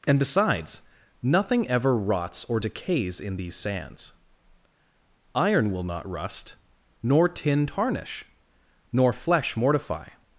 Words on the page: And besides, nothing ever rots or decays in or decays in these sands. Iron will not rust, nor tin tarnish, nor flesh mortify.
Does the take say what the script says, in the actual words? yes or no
no